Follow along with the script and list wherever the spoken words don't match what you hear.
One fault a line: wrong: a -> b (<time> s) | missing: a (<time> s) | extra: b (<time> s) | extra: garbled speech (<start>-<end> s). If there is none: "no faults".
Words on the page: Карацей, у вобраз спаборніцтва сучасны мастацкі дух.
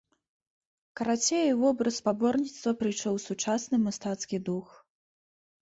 extra: прыйшоў (2.8 s)